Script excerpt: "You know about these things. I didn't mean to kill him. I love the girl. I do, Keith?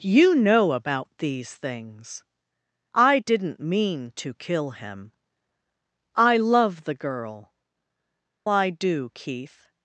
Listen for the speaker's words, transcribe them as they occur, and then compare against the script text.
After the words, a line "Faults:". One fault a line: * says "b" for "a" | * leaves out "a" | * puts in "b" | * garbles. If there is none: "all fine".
"You know about these things. I didn't mean to kill him. I love the girl. I do, Keith?
Faults:
all fine